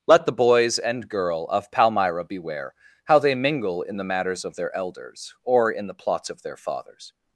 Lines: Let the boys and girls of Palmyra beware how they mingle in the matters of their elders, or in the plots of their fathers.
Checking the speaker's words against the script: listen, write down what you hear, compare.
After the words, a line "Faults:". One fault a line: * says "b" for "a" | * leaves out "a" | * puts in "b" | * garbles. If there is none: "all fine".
Let the boys and girl of Palmyra beware how they mingle in the matters of their elders, or in the plots of their fathers.
Faults:
* says "girl" for "girls"